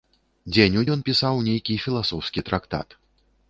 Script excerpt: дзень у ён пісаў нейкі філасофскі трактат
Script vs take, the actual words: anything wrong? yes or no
no